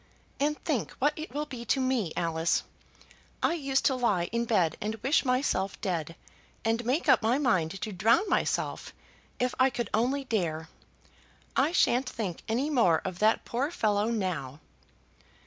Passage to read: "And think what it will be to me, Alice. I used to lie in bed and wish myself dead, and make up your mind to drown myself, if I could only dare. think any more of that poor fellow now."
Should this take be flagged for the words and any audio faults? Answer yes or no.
yes